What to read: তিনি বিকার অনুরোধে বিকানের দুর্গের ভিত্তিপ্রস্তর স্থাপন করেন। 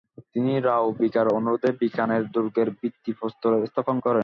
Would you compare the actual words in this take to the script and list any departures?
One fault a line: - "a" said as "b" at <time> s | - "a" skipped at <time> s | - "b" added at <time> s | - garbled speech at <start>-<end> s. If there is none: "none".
- "রাও" added at 0.6 s